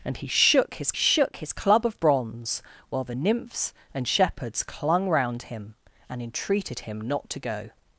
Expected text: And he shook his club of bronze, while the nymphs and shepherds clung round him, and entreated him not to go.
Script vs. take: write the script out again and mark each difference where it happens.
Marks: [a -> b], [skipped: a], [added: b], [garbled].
And he shook his [added: shook his] club of bronze, while the nymphs and shepherds clung round him, and entreated him not to go.